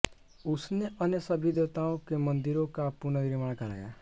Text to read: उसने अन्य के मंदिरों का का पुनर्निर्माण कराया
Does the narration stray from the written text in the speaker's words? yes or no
yes